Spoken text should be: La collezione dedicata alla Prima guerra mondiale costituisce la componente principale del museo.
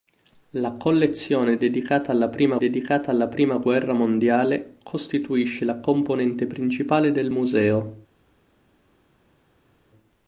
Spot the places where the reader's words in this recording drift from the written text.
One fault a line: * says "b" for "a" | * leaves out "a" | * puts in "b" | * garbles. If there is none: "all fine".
* puts in "dedicata alla Prima"